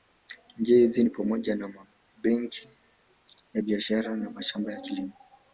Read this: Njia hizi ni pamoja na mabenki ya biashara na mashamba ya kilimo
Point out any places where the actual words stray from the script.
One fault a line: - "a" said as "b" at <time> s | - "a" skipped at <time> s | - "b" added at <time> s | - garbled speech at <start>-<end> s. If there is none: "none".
none